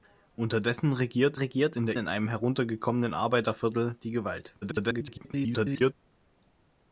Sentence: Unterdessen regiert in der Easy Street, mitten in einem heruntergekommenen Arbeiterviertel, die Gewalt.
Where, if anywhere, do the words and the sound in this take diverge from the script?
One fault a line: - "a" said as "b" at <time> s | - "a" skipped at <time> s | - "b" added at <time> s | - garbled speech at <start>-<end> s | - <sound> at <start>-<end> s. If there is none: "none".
- "regiert" added at 1.3 s
- "Easy Street mitten" skipped at 2.0 s
- garbled speech at 4.6-5.9 s